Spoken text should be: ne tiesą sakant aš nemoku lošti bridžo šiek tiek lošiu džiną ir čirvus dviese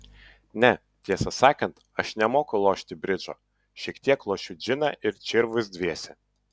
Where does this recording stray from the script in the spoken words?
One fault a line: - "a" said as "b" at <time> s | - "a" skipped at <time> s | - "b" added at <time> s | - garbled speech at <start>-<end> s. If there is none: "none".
none